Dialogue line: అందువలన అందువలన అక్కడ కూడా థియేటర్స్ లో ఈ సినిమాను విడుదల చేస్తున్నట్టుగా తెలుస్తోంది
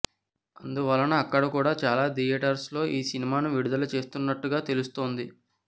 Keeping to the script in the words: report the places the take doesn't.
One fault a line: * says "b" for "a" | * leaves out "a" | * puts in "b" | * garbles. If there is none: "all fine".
* leaves out "అందువలన"
* puts in "చాలా"